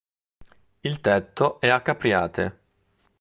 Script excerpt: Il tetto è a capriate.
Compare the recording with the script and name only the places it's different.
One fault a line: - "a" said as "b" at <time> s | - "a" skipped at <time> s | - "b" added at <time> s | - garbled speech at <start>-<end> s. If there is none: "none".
none